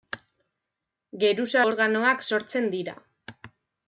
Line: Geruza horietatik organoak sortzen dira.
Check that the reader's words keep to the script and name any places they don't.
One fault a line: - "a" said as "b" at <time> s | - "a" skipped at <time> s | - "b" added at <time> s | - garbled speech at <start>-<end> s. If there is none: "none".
- "horietatik" skipped at 1.6 s